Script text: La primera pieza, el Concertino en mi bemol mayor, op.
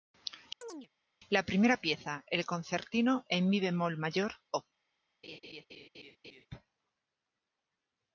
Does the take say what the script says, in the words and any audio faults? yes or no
no